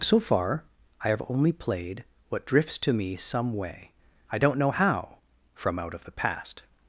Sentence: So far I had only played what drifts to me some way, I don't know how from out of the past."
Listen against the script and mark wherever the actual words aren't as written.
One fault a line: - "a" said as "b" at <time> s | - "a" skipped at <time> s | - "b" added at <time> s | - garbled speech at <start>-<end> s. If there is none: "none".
- "had" said as "have" at 1.1 s